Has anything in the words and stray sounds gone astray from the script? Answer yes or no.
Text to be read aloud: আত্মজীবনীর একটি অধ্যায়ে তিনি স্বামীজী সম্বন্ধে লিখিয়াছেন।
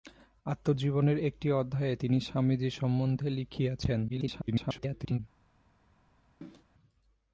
yes